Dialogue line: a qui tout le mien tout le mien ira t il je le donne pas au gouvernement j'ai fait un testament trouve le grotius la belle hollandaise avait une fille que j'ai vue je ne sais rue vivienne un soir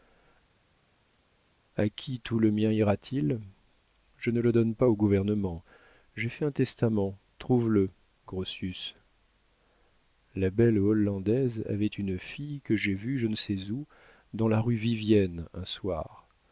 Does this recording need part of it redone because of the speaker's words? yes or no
yes